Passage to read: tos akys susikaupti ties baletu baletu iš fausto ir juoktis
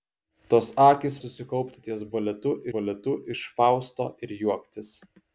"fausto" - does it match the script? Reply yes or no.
yes